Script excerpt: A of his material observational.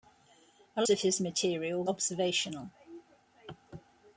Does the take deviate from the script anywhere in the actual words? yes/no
no